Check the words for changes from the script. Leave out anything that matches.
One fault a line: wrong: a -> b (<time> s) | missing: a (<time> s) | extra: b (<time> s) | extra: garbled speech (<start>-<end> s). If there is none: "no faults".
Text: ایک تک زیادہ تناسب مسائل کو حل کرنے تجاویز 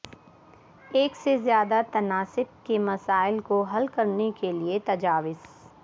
wrong: تک -> سے (1.1 s)
extra: کے (2.6 s)
extra: کے لئے (4.4 s)